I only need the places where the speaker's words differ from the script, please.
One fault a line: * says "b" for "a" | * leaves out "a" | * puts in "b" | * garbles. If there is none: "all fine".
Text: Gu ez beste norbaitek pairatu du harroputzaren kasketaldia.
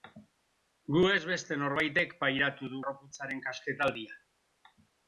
all fine